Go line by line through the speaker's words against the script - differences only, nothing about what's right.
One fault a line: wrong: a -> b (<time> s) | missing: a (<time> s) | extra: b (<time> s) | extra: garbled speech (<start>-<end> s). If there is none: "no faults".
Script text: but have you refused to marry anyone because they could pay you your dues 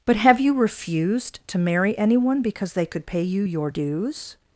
no faults